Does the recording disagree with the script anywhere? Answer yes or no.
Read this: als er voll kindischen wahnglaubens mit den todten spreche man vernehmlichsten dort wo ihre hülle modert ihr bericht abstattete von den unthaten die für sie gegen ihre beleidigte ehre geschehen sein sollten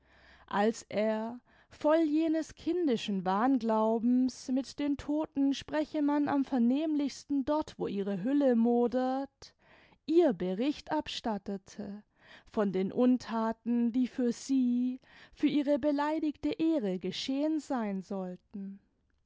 yes